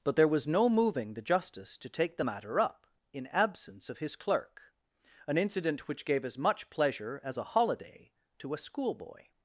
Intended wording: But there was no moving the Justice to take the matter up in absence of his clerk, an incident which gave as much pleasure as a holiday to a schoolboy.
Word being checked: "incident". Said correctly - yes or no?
yes